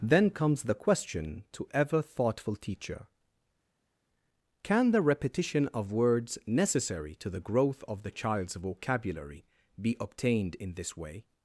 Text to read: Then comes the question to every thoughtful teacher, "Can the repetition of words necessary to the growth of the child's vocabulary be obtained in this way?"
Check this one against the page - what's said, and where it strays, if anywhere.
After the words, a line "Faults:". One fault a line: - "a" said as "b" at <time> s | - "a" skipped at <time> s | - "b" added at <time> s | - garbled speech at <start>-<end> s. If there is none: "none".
Then comes the question to ever thoughtful teacher, "Can the repetition of words necessary to the growth of the child's vocabulary be obtained in this way?"
Faults:
- "every" said as "ever" at 1.7 s